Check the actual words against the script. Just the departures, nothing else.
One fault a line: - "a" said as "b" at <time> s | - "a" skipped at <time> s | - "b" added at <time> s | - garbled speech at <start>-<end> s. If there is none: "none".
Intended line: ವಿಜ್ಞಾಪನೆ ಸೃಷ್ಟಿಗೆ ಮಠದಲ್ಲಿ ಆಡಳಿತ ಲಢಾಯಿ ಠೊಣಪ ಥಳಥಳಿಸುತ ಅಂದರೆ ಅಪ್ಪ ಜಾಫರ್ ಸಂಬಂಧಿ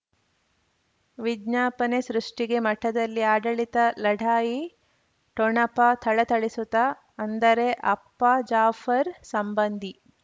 none